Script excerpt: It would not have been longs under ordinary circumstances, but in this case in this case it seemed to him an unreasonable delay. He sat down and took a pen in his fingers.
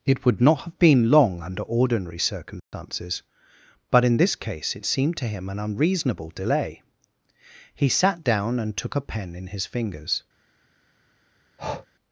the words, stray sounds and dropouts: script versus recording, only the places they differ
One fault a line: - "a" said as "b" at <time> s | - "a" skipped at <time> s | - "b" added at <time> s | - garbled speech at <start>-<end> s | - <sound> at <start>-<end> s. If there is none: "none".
- "longs" said as "long" at 1.1 s
- dropout at 2.6-2.7 s
- "in this case" skipped at 4.8 s
- breath at 11.6-11.9 s